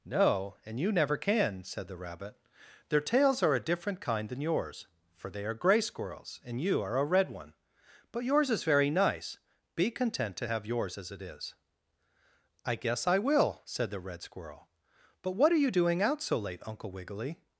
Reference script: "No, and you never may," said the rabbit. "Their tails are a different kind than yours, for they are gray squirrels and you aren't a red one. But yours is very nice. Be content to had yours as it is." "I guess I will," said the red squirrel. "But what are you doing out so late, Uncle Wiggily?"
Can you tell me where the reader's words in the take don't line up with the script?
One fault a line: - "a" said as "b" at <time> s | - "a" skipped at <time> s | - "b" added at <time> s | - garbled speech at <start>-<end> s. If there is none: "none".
- "may" said as "can" at 1.1 s
- "aren't" said as "are" at 6.8 s
- "had" said as "have" at 10.5 s